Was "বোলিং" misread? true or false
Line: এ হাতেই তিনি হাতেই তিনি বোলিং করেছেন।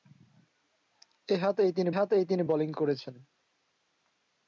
false